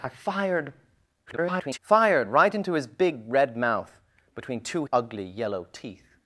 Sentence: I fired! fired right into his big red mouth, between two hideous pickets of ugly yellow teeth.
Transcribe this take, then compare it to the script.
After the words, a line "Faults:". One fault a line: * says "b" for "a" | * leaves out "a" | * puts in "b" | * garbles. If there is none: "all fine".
I fired! [garbled] fired right into his big red mouth, between two ugly yellow teeth.
Faults:
* garbles
* leaves out "hideous pickets of"